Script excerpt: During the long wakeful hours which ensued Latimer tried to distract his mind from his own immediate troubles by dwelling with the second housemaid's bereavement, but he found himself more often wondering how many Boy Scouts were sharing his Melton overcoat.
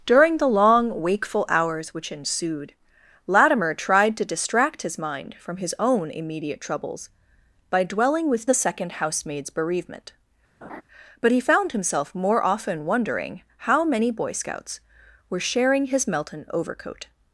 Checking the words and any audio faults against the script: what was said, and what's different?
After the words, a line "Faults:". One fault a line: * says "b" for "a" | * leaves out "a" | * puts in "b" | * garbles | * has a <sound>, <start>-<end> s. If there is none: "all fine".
During the long wakeful hours which ensued Latimer tried to distract his mind from his own immediate troubles by dwelling with the second housemaid's bereavement, but he found himself more often wondering how many Boy Scouts were sharing his Melton overcoat.
Faults:
* has a laugh, 10.6-10.8 s